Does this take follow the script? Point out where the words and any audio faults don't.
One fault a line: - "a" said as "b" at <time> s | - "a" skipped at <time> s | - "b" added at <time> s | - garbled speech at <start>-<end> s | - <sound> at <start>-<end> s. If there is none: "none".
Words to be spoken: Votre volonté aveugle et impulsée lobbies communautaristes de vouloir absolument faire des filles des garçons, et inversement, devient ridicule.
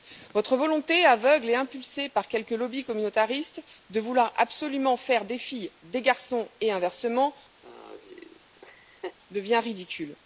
- "par quelques" added at 2.1 s
- laugh at 7.6-9.2 s